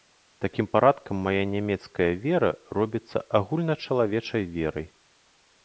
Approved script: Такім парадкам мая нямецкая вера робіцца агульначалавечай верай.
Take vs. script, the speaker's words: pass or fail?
pass